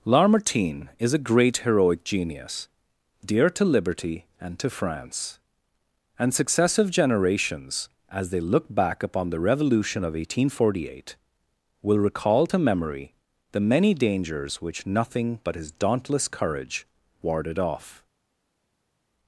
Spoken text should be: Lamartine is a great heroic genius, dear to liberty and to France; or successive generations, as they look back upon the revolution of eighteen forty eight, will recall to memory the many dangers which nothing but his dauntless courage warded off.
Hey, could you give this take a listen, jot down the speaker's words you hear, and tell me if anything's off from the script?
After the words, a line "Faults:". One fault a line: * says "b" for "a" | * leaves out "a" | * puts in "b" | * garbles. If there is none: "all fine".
Lamartine is a great heroic genius, dear to liberty and to France; and successive generations, as they look back upon the revolution of eighteen forty eight, will recall to memory the many dangers which nothing but his dauntless courage warded off.
Faults:
* says "and" for "or"